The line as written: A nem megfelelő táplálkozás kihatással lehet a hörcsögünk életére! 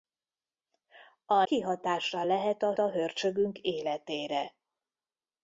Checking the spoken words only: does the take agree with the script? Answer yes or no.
no